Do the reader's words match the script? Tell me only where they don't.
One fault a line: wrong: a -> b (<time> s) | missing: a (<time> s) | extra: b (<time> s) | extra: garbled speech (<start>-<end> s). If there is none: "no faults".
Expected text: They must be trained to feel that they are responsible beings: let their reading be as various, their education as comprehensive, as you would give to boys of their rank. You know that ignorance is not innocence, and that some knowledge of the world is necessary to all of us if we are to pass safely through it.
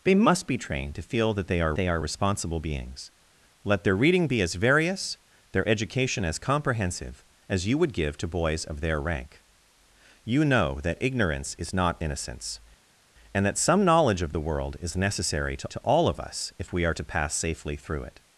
extra: they are (1.7 s)
extra: to (15.7 s)